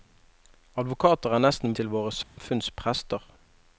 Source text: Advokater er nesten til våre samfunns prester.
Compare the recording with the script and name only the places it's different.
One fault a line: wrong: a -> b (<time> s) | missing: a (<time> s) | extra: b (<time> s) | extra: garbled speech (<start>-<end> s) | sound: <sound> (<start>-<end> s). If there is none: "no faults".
sound: dropout (2.2-2.4 s)